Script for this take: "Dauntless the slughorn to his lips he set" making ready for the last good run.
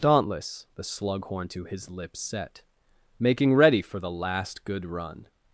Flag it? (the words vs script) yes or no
yes